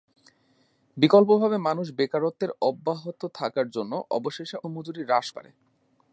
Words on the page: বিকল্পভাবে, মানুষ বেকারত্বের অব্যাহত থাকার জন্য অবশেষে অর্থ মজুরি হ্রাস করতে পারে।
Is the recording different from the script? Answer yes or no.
yes